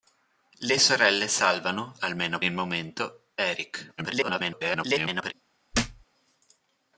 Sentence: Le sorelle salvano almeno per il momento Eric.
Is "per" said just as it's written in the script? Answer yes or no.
no